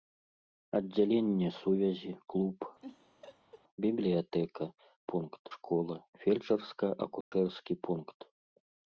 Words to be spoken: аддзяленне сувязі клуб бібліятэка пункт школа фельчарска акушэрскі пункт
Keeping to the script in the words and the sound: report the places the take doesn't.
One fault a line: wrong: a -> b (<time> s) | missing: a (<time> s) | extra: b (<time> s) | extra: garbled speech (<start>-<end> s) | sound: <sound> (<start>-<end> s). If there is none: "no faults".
sound: laugh (2.8-3.6 s)
sound: dropout (7.2-7.3 s)